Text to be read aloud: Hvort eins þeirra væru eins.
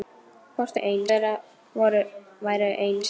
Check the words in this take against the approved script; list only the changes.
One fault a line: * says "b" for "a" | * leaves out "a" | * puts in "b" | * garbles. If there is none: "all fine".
all fine